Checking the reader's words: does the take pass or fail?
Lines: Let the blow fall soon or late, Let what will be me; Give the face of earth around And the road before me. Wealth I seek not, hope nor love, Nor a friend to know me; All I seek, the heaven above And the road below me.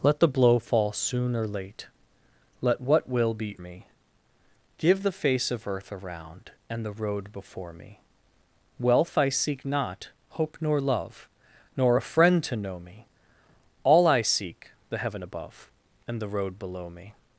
pass